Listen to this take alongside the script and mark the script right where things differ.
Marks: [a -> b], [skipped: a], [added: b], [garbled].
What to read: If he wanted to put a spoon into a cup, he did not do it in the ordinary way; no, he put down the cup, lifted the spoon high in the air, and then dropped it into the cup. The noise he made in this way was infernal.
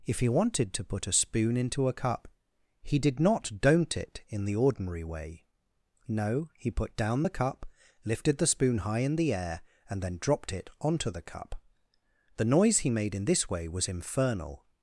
If he wanted to put a spoon into a cup, he did not [do -> don't] it in the ordinary way; no, he put down the cup, lifted the spoon high in the air, and then dropped it [into -> onto] the cup. The noise he made in this way was infernal.